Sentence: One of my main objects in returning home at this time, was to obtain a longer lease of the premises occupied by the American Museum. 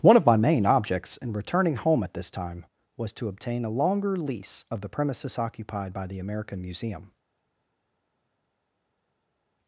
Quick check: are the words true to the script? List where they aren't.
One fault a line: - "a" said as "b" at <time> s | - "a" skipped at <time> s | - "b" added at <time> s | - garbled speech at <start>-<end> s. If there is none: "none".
none